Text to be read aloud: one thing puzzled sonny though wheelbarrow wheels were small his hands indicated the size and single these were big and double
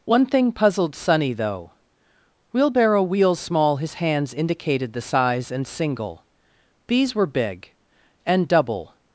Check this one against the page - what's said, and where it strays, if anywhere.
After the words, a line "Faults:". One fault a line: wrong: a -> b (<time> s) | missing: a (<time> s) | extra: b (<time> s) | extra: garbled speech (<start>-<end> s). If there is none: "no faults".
one thing puzzled sonny though wheelbarrow wheels small his hands indicated the size and single these were big and double
Faults:
missing: were (3.4 s)